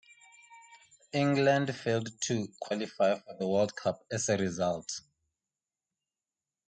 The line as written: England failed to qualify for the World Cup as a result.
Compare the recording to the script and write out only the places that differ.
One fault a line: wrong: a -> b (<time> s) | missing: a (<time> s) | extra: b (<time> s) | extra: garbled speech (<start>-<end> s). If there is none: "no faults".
no faults